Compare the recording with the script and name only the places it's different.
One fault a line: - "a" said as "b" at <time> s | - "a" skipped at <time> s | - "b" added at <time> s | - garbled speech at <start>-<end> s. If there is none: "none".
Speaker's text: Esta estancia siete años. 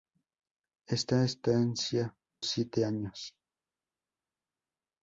none